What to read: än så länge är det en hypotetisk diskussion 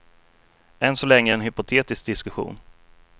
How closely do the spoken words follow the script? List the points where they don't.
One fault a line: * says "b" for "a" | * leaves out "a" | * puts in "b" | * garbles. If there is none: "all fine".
all fine